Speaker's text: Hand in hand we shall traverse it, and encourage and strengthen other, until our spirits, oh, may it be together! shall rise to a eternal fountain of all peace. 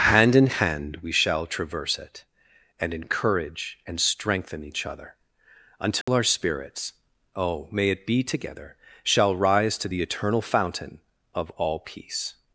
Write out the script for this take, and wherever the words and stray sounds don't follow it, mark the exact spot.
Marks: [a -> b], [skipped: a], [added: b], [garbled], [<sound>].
Hand in hand we shall traverse it, and encourage and strengthen [added: each] other, until [dropout] our spirits, oh, may it be together! shall rise to [a -> the] eternal fountain of all peace.